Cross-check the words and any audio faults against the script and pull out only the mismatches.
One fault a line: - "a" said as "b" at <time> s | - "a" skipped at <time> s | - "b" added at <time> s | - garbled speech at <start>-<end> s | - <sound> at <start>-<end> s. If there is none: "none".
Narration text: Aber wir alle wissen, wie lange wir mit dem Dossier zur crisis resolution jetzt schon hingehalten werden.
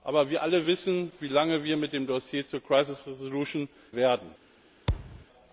- "jetzt schon hingehalten" skipped at 3.7 s
- thud at 4.9-5.3 s